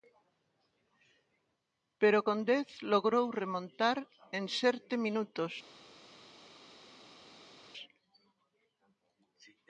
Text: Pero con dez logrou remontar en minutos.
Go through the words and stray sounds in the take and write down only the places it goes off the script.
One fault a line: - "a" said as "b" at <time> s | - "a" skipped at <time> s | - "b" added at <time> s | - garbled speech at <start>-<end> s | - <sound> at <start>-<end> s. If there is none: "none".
- "serte" added at 4.6 s